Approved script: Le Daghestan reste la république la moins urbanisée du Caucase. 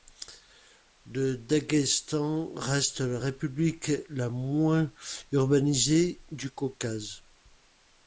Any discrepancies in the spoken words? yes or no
no